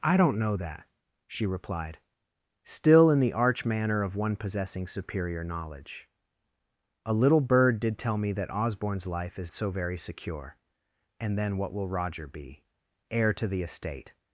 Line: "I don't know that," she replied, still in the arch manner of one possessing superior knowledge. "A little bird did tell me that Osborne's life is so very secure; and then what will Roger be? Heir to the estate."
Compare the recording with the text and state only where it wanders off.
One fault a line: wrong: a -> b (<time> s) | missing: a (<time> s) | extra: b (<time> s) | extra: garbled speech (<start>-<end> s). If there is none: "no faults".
no faults